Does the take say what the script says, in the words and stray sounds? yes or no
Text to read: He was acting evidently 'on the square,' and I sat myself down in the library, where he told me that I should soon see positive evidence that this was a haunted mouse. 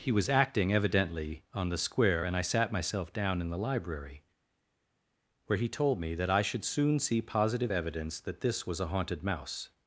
yes